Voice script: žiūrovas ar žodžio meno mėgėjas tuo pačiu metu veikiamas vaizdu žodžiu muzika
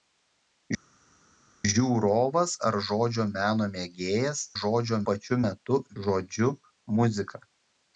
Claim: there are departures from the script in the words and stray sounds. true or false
true